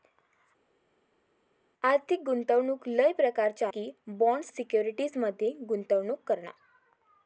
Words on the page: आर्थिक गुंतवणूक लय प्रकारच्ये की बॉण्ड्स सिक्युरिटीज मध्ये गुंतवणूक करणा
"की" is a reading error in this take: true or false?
false